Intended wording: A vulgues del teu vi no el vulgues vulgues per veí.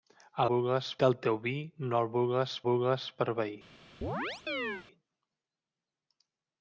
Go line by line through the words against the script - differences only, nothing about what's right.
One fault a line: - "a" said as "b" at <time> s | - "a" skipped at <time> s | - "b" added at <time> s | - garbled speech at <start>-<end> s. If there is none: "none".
none